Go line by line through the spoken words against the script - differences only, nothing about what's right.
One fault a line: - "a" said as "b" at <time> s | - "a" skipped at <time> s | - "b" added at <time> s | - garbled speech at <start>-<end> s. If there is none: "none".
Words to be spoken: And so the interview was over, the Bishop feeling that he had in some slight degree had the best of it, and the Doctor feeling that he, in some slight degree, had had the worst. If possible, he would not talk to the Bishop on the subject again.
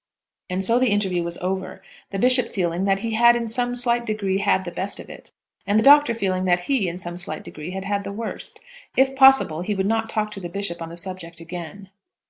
none